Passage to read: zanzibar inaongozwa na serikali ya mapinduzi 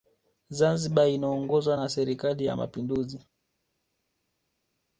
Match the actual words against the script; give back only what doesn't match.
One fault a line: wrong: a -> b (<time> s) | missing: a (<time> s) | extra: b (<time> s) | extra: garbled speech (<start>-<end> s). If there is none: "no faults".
no faults